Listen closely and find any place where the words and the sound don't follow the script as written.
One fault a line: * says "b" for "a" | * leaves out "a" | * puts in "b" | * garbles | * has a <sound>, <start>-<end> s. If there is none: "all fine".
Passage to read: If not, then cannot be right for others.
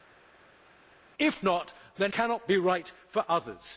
all fine